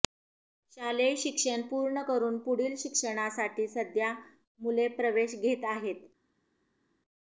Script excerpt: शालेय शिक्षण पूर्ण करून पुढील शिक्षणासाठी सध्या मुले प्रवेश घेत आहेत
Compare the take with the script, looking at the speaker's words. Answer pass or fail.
pass